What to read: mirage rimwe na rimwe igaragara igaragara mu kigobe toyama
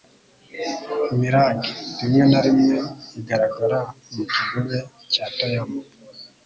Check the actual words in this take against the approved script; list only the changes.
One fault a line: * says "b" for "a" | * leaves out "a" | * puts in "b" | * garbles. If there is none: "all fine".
* leaves out "igaragara"
* puts in "cya"